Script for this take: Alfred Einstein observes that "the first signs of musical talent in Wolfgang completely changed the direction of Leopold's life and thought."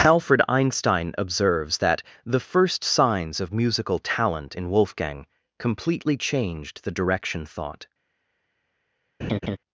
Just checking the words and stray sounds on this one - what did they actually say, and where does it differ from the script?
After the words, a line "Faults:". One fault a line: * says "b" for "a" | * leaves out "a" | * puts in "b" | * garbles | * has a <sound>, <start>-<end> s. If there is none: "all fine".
Alfred Einstein observes that "the first signs of musical talent in Wolfgang completely changed the direction thought."
Faults:
* leaves out "of Leopold's life and"
* has a laugh, 9.2-9.6 s